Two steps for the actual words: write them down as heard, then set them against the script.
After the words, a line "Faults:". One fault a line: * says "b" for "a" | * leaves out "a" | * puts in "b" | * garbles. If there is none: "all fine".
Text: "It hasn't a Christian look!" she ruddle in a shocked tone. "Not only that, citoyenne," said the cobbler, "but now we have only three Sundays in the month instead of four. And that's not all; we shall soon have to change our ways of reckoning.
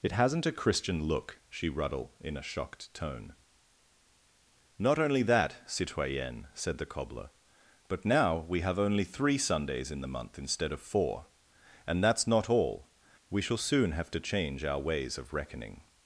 "It hasn't a Christian look!" she ruddle in a shocked tone. "Not only that, citoyenne," said the cobbler, "but now we have only three Sundays in the month instead of four. And that's not all; we shall soon have to change our ways of reckoning.
Faults:
all fine